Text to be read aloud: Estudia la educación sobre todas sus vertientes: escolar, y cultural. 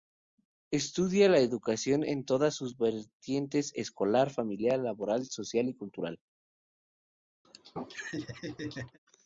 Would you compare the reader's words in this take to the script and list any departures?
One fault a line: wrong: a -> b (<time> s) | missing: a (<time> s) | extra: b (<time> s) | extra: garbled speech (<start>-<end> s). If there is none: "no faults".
wrong: sobre -> en (2.0 s)
extra: familiar laboral social (4.3 s)